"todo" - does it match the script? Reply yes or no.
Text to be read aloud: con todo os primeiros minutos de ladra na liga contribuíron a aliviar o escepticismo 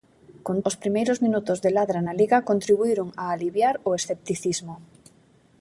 no